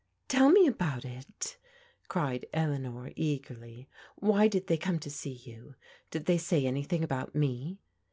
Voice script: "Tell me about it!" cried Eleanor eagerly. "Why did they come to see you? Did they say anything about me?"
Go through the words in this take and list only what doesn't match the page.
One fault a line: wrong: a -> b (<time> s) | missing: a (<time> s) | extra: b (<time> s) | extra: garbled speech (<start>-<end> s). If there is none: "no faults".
no faults